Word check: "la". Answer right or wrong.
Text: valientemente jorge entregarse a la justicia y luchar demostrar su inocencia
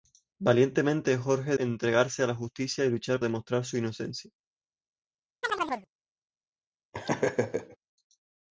right